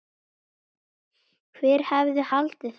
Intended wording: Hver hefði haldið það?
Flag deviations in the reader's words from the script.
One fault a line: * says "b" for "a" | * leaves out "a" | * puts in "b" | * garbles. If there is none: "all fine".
all fine